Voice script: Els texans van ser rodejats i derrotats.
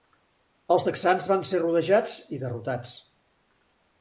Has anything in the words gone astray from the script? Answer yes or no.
no